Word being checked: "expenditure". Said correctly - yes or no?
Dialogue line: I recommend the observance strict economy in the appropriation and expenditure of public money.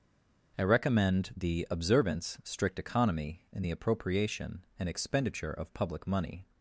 yes